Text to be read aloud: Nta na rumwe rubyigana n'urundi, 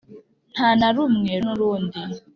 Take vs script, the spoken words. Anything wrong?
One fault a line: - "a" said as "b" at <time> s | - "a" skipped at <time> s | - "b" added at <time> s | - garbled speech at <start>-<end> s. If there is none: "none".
- "rubyigana" skipped at 1.3 s